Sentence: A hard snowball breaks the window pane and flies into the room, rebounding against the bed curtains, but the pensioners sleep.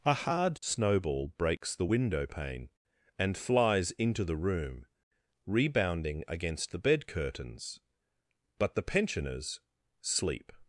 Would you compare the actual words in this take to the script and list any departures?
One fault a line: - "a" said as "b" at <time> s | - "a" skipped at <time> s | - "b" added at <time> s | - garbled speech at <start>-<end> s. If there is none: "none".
none